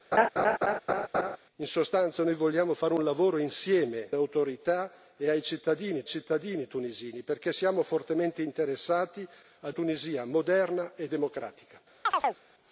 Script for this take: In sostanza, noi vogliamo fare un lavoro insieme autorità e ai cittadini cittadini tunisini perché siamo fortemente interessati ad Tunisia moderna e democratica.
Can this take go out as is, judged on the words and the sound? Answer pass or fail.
fail